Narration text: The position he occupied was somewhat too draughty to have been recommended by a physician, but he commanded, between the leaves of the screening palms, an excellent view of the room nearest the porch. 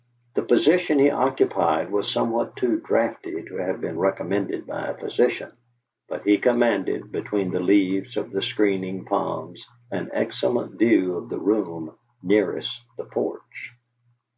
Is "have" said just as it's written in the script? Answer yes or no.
yes